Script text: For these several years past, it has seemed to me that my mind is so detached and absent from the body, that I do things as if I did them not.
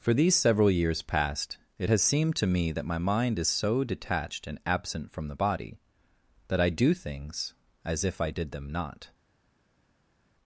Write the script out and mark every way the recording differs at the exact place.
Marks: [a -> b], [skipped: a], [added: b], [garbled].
For these several years past, it has seemed to me that my mind is so detached and absent from the body, that I do things as if I did them not.